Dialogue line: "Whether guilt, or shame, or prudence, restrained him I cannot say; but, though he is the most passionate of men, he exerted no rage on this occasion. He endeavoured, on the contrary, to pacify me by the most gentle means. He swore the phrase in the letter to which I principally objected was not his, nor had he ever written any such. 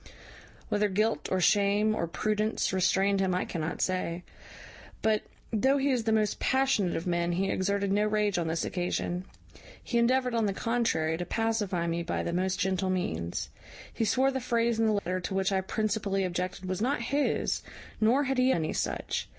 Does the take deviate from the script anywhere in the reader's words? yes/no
yes